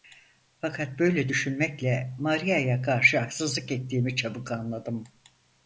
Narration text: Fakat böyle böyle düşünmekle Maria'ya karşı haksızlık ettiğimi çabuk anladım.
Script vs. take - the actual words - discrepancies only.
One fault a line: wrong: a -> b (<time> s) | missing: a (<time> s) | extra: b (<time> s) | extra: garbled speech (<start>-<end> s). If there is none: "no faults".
missing: böyle (1.3 s)